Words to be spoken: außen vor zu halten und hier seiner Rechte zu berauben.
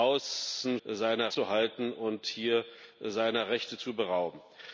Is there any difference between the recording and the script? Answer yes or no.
yes